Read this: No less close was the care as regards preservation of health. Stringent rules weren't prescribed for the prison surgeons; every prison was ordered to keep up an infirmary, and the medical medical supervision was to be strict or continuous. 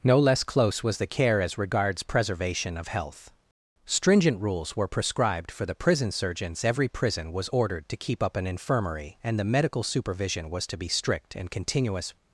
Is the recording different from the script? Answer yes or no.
yes